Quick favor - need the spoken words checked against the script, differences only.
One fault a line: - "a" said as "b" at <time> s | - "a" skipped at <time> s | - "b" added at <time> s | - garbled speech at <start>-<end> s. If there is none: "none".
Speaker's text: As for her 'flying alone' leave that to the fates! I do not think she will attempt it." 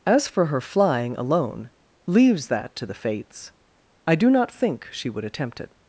- "leave" said as "leaves" at 2.1 s
- "will" said as "would" at 5.1 s